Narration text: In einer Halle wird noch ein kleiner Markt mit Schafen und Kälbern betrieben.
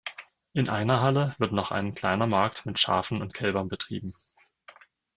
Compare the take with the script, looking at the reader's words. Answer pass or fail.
pass